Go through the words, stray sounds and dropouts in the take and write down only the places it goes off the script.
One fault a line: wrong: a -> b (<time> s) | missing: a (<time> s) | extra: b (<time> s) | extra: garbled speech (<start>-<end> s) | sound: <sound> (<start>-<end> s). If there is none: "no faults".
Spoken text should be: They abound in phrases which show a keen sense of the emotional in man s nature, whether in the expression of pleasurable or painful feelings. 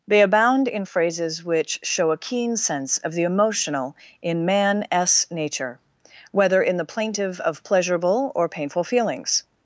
wrong: expression -> plaintive (6.9 s)